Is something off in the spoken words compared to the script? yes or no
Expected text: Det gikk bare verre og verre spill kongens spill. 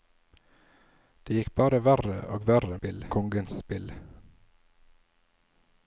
no